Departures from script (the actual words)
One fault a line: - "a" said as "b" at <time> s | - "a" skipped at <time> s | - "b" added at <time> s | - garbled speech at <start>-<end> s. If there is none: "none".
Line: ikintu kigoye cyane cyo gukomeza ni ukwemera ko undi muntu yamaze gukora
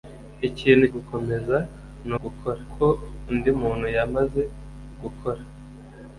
- "kigoye cyane cyo" skipped at 0.9 s
- "ukwemera" said as "gukora" at 2.2 s